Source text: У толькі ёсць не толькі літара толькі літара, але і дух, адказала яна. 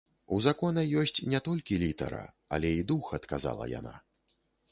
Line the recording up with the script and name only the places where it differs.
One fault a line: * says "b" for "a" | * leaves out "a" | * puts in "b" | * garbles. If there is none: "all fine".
* says "закона" for "толькі"
* leaves out "толькі літара"